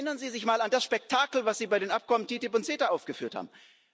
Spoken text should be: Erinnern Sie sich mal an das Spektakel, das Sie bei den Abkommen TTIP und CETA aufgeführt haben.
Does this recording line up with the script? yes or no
yes